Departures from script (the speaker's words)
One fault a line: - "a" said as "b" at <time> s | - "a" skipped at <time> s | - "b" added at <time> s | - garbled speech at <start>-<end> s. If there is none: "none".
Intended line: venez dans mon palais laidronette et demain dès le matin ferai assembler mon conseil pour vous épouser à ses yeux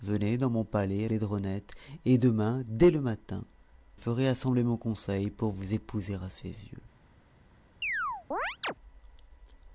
none